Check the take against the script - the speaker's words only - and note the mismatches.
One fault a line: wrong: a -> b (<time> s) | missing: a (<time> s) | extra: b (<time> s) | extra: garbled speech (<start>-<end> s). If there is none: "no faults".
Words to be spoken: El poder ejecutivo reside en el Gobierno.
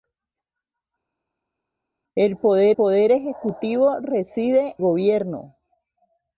extra: poder (2.7 s)
missing: en el (4.8 s)